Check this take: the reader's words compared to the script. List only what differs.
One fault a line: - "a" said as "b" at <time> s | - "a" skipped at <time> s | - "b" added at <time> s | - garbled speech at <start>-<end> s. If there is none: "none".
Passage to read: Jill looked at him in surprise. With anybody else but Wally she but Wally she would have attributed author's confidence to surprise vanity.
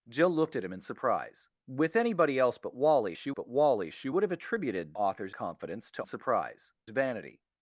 none